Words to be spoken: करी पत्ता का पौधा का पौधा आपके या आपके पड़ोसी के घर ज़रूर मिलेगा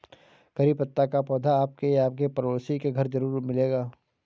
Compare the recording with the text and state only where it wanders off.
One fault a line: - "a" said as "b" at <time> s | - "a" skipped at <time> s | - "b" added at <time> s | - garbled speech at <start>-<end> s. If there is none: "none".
- "का पौधा" skipped at 1.6 s